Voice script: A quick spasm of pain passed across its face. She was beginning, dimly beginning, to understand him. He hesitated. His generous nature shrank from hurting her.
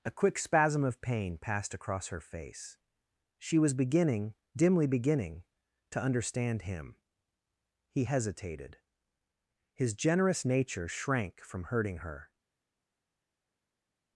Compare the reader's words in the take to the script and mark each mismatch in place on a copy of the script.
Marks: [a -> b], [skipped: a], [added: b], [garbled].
A quick spasm of pain passed across [its -> her] face. She was beginning, dimly beginning, to understand him. He hesitated. His generous nature shrank from hurting her.